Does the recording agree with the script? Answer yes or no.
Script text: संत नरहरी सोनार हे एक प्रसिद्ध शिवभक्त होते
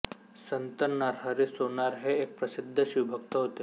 yes